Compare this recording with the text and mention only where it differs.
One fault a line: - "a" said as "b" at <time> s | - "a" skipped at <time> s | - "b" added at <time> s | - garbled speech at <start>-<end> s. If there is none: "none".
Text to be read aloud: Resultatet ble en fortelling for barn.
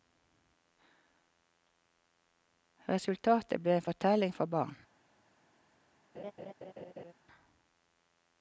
none